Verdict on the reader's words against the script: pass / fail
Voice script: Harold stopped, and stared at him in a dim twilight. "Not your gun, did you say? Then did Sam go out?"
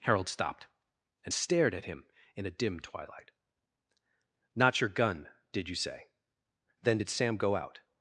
pass